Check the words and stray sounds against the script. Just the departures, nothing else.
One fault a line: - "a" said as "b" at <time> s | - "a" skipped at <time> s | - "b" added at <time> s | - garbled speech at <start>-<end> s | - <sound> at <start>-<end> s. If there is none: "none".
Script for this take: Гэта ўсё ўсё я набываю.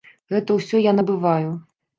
- "ўсё" skipped at 0.8 s